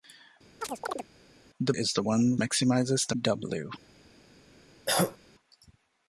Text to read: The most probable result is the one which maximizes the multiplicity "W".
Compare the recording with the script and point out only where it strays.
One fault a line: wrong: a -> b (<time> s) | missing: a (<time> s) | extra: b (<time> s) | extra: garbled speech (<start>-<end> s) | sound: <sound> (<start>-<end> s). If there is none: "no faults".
sound: chirp (0.6-1.1 s)
missing: most probable result (1.7 s)
missing: which (2.3 s)
missing: multiplicity (3.2 s)
sound: cough (4.9-5.2 s)